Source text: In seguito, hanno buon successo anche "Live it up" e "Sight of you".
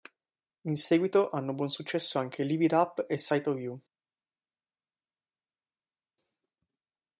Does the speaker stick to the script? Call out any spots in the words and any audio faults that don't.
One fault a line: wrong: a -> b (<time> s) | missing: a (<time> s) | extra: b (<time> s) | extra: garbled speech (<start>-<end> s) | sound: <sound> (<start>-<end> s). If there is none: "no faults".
no faults